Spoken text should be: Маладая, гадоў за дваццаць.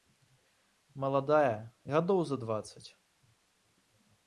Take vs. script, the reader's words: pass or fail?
pass